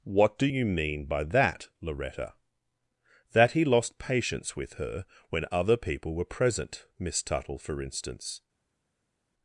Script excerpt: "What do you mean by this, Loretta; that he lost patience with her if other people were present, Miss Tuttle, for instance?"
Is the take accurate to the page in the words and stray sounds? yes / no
no